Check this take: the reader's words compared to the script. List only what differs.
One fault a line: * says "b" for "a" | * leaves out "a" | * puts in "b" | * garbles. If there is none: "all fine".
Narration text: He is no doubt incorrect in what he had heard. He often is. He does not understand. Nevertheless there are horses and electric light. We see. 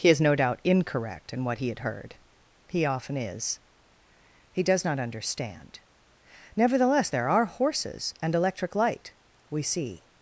all fine